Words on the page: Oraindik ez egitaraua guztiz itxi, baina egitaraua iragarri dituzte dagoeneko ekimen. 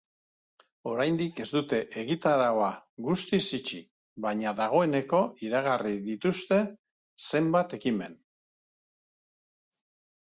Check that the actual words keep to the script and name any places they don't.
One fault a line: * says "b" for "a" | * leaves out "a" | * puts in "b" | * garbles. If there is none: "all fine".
* puts in "dute"
* says "dagoeneko" for "egitaraua"
* says "zenbait" for "dagoeneko"